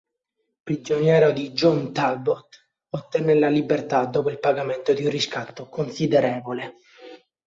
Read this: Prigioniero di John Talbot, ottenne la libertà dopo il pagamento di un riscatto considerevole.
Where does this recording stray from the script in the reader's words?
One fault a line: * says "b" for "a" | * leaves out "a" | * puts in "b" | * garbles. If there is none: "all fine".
all fine